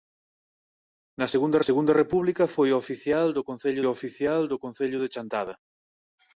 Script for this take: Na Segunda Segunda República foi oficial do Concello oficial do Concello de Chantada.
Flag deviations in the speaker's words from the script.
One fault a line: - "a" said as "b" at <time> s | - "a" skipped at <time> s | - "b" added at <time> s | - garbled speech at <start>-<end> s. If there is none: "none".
none